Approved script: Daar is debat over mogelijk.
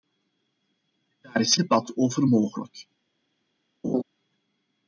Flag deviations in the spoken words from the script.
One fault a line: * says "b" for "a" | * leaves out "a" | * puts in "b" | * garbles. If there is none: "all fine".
all fine